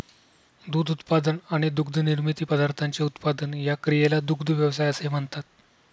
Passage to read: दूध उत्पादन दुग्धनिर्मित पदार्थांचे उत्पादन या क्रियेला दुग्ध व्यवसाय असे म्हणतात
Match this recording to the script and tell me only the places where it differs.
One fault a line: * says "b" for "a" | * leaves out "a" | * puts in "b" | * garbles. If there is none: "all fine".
* puts in "आणि"